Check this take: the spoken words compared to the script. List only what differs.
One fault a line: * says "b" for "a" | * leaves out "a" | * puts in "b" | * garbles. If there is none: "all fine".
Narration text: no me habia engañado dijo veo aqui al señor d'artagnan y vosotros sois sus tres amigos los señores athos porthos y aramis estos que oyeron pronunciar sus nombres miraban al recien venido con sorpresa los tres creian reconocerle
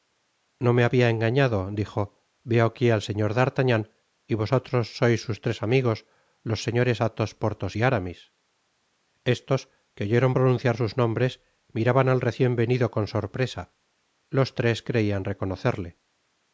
all fine